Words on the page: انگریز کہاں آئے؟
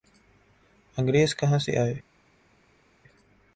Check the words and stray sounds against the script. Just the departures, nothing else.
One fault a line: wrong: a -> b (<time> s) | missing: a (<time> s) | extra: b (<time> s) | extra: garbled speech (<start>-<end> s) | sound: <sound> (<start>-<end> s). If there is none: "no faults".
extra: سے (1.6 s)